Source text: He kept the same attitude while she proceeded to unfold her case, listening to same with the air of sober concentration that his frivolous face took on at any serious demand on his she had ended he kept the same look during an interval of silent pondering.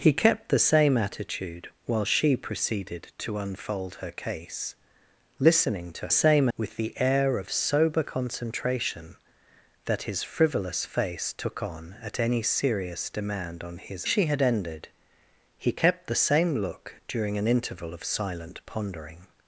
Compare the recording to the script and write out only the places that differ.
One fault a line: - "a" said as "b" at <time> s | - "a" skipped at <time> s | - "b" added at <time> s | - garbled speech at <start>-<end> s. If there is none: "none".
none